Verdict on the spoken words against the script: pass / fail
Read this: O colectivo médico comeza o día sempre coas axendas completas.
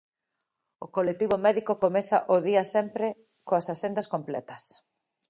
pass